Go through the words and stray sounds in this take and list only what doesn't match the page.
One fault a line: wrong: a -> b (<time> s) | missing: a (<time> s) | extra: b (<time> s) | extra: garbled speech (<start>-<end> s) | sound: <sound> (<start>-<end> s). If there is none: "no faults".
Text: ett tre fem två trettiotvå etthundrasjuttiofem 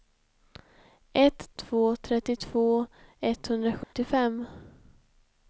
missing: tre fem (1.6 s)
sound: dropout (3.8-3.9 s)